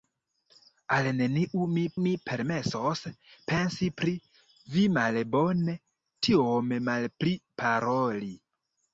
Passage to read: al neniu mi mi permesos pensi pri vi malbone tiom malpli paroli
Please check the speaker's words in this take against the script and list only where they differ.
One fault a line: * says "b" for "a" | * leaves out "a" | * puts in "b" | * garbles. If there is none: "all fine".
all fine